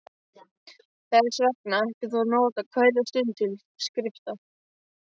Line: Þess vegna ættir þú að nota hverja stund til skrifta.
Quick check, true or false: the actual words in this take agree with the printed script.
true